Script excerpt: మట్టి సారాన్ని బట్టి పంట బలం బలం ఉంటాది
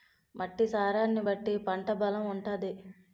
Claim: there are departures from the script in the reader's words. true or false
true